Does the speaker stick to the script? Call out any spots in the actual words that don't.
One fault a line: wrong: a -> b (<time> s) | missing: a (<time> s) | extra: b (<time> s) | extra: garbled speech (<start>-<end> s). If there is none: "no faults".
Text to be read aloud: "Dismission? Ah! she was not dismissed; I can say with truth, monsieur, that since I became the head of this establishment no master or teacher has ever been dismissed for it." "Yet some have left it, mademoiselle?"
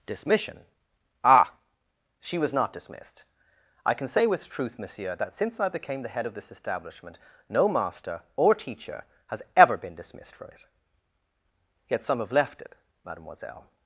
no faults